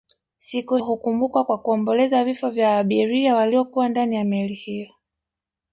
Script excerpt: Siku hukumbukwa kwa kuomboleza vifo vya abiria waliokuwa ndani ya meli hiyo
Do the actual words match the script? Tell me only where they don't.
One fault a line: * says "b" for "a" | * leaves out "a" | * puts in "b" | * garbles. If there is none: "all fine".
all fine